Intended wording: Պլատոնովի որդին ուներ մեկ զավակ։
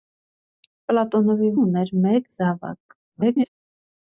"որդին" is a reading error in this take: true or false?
true